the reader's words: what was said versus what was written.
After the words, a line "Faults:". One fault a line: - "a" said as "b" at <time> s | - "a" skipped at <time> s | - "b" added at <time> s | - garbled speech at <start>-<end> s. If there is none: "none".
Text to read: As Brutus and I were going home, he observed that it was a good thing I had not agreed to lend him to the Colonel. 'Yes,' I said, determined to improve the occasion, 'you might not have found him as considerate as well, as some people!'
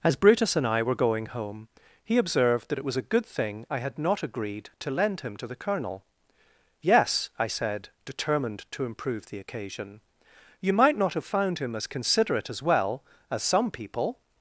As Brutus and I were going home, he observed that it was a good thing I had not agreed to lend him to the Colonel. 'Yes,' I said, determined to improve the occasion, 'you might not have found him as considerate as well, as some people!'
Faults:
none